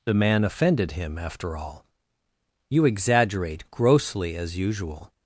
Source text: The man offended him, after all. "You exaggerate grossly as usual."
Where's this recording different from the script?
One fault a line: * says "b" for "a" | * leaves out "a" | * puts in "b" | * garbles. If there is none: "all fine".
all fine